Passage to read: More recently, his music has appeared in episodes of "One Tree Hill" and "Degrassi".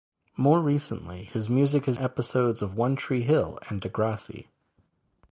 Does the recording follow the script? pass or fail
fail